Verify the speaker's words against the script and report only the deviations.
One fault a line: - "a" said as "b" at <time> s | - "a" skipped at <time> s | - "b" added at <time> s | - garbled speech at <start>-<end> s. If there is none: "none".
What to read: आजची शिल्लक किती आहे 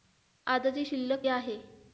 - "किती" skipped at 1.2 s